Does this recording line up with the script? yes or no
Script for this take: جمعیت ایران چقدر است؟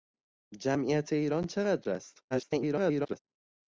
no